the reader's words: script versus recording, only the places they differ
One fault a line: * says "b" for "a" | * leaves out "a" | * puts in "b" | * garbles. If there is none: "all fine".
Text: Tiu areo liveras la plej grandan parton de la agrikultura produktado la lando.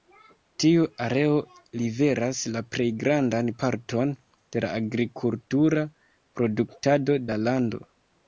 all fine